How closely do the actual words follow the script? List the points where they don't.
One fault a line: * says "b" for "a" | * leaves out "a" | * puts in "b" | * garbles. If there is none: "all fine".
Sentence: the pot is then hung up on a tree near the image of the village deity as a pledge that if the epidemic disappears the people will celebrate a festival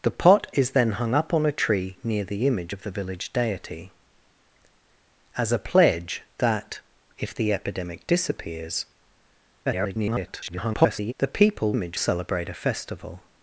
* garbles
* says "image" for "will"